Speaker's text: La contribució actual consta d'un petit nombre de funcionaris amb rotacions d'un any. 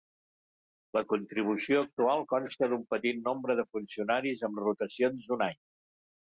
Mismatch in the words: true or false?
false